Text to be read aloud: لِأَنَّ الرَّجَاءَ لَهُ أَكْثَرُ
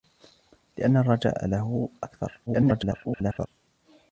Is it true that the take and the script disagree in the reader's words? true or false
true